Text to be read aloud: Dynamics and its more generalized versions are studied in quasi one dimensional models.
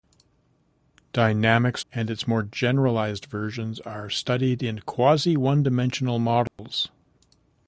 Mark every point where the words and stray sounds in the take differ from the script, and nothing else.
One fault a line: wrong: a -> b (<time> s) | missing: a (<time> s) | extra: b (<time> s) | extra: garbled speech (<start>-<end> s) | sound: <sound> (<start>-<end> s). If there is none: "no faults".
sound: dropout (6.5-6.6 s)